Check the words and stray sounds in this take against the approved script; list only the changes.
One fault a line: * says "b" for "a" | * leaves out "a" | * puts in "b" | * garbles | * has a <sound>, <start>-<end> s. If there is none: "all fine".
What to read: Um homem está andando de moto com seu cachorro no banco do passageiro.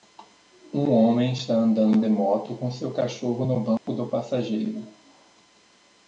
* has a dropout, 3.8-3.9 s